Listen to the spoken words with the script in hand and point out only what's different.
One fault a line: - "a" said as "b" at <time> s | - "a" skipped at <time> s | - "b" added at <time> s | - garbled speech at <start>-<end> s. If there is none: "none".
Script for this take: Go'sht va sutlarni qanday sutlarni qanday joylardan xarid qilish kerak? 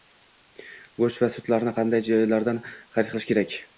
- "sutlarni qanday" skipped at 2.1 s